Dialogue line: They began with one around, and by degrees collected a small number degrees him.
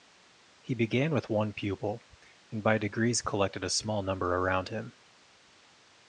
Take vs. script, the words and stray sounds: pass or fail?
fail